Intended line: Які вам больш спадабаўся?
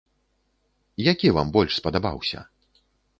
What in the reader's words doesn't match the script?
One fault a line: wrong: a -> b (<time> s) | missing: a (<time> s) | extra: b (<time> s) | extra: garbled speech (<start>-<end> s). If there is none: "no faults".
no faults